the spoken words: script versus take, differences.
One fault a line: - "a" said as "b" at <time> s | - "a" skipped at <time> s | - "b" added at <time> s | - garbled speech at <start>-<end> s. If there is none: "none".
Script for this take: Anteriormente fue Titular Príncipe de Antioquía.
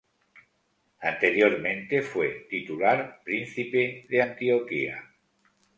none